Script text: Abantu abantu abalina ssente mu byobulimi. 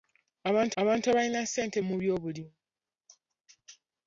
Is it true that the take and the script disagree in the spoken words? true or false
false